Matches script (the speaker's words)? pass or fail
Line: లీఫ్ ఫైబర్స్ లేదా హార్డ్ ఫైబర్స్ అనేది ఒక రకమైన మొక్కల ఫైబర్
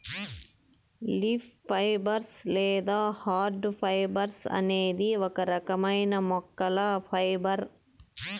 pass